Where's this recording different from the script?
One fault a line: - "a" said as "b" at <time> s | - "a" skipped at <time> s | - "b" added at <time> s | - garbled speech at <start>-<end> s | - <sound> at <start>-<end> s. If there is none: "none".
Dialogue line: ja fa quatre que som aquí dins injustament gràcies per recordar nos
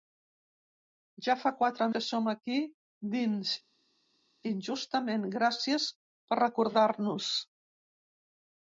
none